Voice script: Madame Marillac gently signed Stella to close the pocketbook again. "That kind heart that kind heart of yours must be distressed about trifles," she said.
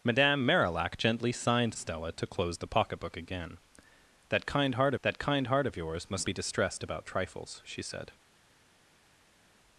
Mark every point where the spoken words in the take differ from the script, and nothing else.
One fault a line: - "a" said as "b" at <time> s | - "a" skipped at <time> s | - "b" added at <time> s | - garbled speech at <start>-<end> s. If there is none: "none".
none